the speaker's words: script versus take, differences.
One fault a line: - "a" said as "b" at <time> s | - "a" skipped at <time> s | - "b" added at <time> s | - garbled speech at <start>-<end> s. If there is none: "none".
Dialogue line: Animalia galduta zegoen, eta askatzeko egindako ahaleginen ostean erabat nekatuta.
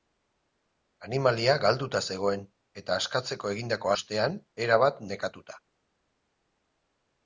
- "ahaleginen" skipped at 3.9 s